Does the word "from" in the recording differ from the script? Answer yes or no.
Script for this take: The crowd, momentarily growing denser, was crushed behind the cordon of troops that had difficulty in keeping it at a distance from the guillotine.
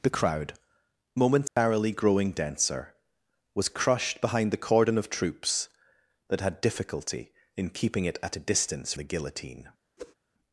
yes